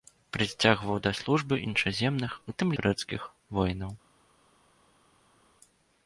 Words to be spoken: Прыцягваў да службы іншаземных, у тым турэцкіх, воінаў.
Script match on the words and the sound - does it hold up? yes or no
yes